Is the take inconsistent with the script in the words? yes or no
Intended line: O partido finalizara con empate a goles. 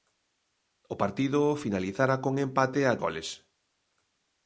no